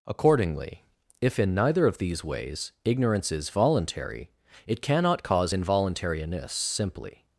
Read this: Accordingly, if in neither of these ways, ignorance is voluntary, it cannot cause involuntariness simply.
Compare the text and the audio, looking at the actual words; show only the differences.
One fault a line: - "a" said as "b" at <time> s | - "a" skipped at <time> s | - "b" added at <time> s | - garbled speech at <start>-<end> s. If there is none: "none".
none